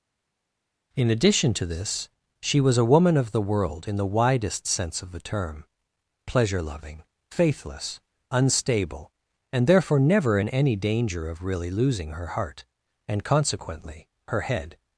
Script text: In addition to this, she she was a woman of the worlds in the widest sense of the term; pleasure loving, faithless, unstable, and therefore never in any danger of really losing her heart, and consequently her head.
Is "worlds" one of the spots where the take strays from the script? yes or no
yes